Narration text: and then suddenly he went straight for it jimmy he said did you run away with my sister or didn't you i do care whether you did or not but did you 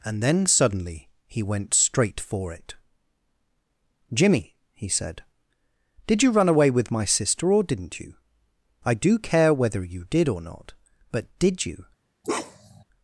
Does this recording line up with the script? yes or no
yes